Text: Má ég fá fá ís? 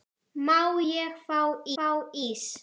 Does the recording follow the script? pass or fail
pass